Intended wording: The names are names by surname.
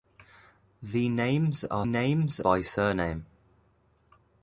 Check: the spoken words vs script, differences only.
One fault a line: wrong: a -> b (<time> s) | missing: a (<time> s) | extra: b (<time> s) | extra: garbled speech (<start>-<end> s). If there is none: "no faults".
no faults